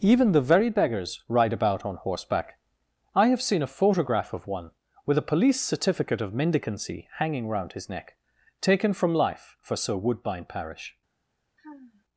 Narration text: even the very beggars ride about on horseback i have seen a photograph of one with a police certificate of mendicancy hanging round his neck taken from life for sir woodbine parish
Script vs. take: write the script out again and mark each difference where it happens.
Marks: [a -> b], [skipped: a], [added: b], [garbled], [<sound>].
even the very beggars ride about on horseback i have seen a photograph of one with a police certificate of mendicancy hanging round his neck taken from life for sir woodbine parish [sigh]